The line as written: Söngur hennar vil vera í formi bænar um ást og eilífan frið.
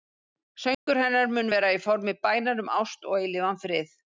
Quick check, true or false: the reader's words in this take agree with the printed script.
false